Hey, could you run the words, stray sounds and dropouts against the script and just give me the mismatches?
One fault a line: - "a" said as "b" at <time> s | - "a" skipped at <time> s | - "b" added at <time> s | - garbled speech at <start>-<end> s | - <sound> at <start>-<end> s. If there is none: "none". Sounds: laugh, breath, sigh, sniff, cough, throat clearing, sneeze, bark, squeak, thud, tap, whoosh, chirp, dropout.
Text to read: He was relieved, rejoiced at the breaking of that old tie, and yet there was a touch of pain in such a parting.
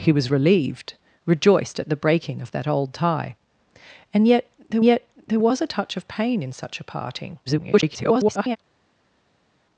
- "yet there" added at 4.8 s
- garbled speech at 7.5-8.6 s